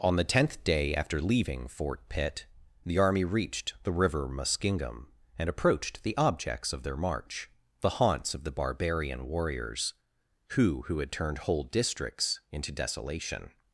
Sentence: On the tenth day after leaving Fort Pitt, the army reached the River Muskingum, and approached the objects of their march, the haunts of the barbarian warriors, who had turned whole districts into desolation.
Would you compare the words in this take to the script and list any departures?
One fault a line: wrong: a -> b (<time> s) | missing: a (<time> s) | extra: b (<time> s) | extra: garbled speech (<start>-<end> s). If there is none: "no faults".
extra: who (10.8 s)